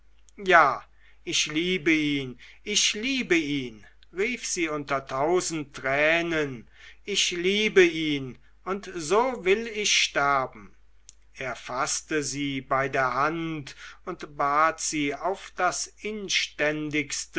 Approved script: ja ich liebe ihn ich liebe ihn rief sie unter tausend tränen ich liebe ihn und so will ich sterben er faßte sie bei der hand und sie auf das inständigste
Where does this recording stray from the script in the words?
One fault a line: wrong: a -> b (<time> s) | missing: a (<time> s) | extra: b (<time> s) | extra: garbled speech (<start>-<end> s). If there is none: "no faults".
extra: bat (14.4 s)